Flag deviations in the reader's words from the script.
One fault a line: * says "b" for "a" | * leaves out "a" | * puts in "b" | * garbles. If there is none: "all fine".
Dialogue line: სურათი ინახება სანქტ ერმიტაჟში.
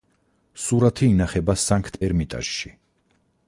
all fine